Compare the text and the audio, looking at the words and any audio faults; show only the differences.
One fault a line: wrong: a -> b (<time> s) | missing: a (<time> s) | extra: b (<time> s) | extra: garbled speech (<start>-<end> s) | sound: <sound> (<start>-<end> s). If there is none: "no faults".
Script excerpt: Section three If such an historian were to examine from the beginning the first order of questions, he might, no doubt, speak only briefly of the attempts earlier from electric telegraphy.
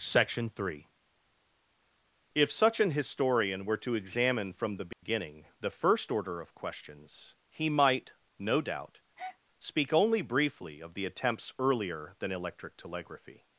sound: dropout (4.9-5.0 s)
sound: breath (9.2-9.4 s)
wrong: from -> than (12.2 s)